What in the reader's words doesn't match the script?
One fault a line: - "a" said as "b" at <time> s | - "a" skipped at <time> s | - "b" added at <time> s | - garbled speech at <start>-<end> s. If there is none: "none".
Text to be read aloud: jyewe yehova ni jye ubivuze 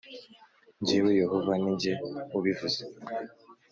none